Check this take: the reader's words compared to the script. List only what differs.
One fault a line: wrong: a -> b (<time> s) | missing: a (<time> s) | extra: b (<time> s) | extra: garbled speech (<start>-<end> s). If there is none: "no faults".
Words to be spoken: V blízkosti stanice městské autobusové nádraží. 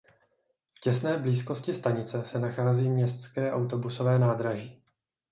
extra: těsné (0.8 s)
extra: se nachází (2.2 s)